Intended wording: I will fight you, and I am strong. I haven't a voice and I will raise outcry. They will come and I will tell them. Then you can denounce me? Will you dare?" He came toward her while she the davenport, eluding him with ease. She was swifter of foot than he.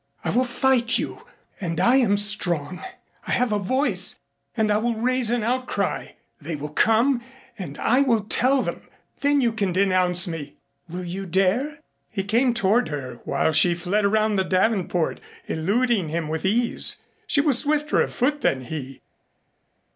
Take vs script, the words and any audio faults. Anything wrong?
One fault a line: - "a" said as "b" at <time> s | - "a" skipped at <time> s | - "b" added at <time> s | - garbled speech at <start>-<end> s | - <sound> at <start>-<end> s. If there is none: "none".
- "haven't" said as "have" at 3.3 s
- "an" added at 5.3 s
- "fled around" added at 13.7 s